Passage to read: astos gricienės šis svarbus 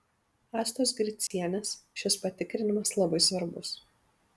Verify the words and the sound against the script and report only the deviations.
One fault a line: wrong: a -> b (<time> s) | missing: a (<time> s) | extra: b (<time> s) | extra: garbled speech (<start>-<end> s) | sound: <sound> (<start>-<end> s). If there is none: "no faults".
sound: dropout (1.3-1.3 s)
extra: patikrinimas labai (2.2 s)